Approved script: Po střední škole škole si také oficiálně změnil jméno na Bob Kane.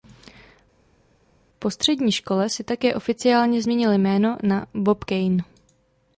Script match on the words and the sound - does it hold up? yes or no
no